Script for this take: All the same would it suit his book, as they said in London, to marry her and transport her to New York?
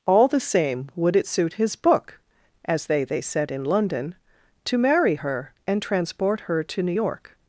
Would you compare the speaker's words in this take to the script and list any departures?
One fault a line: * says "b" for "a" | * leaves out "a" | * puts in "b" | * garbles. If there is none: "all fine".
* puts in "they"